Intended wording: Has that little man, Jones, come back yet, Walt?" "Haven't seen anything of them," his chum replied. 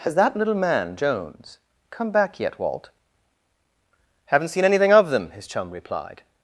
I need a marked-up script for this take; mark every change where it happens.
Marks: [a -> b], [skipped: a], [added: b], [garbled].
Has that little man, Jones, come back yet, Walt?" "Haven't seen anything of them," his chum replied.